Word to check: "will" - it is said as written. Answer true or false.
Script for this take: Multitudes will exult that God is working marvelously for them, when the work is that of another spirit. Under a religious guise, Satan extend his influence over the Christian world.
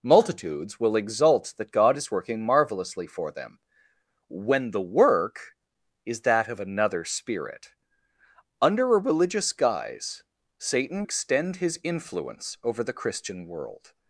true